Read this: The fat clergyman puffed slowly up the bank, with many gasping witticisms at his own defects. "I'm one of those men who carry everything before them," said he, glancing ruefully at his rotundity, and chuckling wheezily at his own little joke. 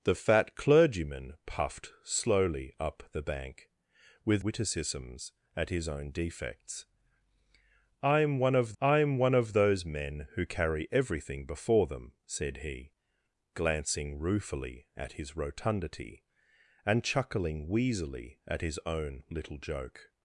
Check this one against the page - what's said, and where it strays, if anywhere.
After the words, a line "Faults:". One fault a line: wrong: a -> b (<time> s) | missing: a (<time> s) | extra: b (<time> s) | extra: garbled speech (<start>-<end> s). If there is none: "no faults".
The fat clergyman puffed slowly up the bank, with witticisms at his own defects. "I'm one of I'm one of those men who carry everything before them," said he, glancing ruefully at his rotundity, and chuckling wheezily at his own little joke.
Faults:
missing: many gasping (4.4 s)
extra: I'm one of (8.8 s)